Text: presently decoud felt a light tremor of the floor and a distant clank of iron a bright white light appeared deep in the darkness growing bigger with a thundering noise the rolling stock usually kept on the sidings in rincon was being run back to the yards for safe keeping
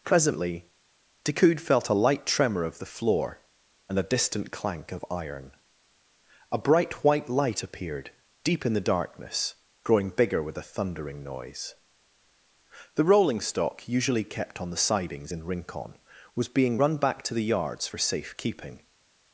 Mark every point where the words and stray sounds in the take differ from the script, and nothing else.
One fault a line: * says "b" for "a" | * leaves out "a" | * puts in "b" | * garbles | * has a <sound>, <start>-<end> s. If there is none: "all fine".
all fine